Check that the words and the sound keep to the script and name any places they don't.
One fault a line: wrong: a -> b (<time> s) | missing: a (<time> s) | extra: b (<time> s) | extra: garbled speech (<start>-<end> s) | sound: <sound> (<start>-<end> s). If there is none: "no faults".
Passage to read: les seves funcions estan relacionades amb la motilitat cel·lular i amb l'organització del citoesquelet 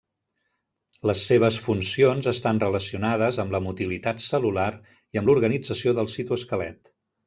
no faults